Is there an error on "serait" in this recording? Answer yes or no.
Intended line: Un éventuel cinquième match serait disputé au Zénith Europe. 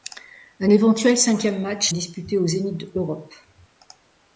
yes